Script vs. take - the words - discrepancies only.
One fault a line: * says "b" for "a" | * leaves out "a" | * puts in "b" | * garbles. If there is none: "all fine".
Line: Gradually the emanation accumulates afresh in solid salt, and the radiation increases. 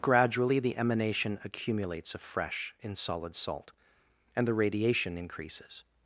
all fine